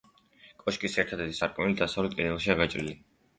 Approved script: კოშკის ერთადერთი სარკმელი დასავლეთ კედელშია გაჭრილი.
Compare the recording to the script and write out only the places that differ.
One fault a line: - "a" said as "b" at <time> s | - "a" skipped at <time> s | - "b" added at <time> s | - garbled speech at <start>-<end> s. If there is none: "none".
none